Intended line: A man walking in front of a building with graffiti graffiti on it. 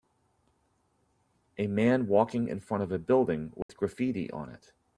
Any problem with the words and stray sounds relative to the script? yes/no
yes